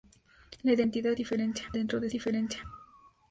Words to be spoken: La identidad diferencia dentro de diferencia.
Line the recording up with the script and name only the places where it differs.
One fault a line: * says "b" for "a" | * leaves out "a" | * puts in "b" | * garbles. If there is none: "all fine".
all fine